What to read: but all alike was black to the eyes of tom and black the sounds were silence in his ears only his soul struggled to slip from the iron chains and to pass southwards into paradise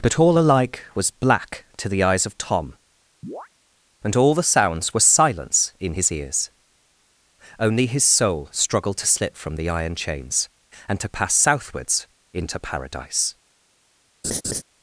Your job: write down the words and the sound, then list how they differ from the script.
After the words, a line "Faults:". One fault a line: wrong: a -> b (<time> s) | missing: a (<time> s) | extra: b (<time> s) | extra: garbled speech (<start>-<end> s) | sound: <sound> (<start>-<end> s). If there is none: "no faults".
but all alike was black to the eyes of tom and all the sounds were silence in his ears only his soul struggled to slip from the iron chains and to pass southwards into paradise
Faults:
sound: chirp (3.2-3.5 s)
wrong: black -> all (4.2 s)
sound: laugh (14.2-14.6 s)